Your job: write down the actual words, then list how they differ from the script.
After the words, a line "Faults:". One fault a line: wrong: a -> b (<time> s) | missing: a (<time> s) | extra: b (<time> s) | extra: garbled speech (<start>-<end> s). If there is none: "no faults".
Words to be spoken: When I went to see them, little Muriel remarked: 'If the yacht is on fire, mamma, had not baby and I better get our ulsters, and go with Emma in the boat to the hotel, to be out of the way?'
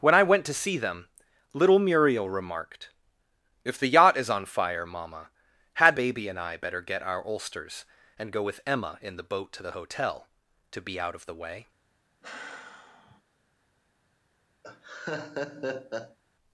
When I went to see them, little Muriel remarked: 'If the yacht is on fire, mamma, had baby and I better get our ulsters, and go with Emma in the boat to the hotel, to be out of the way?'
Faults:
missing: not (6.0 s)